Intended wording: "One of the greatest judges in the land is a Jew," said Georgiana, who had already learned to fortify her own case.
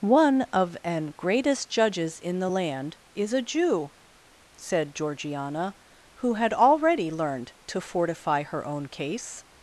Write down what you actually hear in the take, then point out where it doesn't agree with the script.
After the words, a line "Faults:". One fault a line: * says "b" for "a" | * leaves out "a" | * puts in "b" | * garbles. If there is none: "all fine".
"One of an greatest judges in the land is a Jew," said Georgiana, who had already learned to fortify her own case.
Faults:
* says "an" for "the"